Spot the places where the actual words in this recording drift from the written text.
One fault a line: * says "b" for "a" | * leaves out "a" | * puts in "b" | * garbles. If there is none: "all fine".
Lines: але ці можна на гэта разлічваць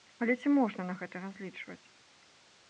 all fine